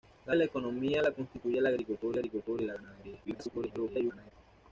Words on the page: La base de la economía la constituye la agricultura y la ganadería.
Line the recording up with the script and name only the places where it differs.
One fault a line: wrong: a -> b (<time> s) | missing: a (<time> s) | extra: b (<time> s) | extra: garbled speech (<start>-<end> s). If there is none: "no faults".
missing: base (0.3 s)
extra: agricultura (2.1 s)
extra: garbled speech (3.2-4.3 s)